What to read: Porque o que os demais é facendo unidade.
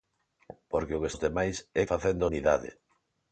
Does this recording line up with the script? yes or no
yes